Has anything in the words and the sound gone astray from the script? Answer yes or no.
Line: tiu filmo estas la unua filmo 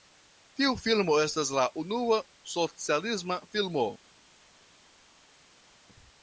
yes